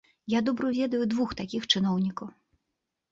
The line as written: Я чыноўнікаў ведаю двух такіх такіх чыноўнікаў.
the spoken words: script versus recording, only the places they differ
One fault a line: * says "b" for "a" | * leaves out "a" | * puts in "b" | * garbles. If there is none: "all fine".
* says "добра" for "чыноўнікаў"
* leaves out "такіх"